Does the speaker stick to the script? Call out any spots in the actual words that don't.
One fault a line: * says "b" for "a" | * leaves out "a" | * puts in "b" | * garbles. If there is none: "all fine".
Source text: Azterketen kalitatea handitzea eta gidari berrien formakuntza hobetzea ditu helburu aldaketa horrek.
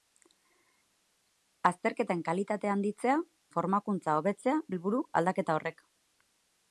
* leaves out "eta gidari berrien"
* leaves out "ditu"